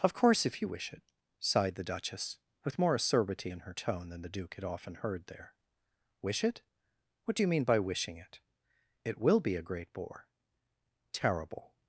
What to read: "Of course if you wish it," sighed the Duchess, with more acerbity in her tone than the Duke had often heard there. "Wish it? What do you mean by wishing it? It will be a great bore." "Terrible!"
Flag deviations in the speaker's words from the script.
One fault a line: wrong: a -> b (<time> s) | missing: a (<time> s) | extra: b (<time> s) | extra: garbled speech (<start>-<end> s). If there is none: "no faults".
no faults